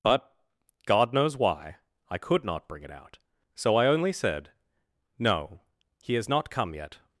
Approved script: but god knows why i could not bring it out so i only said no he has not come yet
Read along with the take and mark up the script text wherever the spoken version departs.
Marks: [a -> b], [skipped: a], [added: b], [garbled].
but god knows why i could not bring it out so i only said no he has not come yet